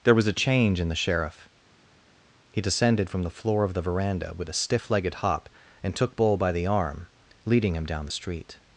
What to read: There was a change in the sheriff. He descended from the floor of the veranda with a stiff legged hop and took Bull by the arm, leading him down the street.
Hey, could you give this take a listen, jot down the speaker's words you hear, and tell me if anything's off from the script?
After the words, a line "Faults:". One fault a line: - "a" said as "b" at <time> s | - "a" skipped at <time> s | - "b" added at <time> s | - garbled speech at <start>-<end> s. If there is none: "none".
There was a change in the sheriff. He descended from the floor of the veranda with a stiff legged hop and took Bull by the arm, leading him down the street.
Faults:
none